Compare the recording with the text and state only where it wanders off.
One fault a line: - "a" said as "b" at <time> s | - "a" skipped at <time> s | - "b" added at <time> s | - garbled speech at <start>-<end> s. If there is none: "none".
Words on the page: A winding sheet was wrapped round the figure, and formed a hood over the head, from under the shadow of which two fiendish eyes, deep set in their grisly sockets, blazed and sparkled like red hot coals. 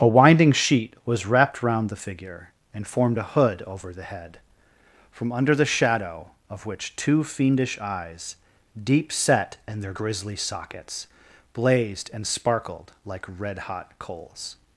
none